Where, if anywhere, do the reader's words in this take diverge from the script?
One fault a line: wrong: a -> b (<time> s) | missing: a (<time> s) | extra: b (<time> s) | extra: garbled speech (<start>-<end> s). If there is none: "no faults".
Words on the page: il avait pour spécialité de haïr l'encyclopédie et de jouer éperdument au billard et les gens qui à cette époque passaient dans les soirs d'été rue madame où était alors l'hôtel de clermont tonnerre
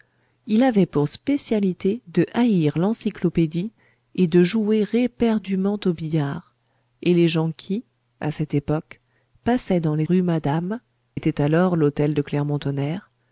missing: soirs d'été (10.1 s)
missing: où (10.8 s)